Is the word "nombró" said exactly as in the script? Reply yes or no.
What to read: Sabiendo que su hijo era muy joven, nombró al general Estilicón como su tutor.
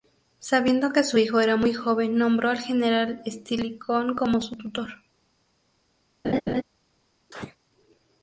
yes